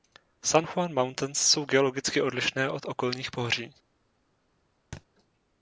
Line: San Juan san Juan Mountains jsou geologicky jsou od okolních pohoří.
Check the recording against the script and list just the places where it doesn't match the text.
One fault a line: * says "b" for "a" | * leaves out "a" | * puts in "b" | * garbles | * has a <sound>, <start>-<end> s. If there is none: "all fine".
* leaves out "san Juan"
* says "odlišné" for "jsou"
* has a thud, 4.9-5.1 s